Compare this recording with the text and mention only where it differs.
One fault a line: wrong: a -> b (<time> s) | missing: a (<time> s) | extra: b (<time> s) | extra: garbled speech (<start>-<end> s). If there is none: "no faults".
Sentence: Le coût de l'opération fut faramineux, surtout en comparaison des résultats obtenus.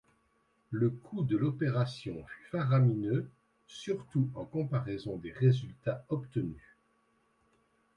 no faults